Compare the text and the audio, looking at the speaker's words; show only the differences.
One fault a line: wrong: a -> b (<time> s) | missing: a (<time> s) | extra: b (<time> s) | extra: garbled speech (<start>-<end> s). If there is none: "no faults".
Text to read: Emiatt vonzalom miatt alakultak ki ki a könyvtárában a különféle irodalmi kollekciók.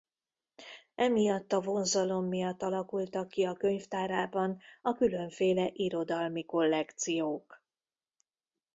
extra: a (1.5 s)
missing: ki (3.4 s)